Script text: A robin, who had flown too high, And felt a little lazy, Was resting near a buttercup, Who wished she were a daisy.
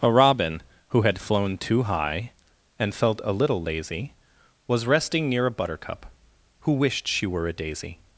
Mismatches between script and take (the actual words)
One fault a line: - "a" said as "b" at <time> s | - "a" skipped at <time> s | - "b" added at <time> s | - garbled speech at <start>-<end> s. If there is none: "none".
none